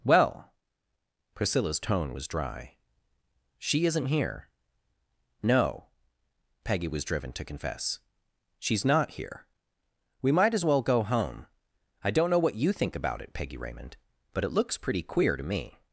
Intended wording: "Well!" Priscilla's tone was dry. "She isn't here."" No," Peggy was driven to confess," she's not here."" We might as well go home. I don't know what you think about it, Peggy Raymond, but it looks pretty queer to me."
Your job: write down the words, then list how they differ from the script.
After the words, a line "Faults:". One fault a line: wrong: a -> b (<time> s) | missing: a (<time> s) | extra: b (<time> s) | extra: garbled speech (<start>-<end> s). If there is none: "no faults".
"Well!" Priscilla's tone was dry. "She isn't here."" No," Peggy was driven to confess," she's not here."" We might as well go home. I don't know what you think about it, Peggy Raymond, but it looks pretty queer to me."
Faults:
no faults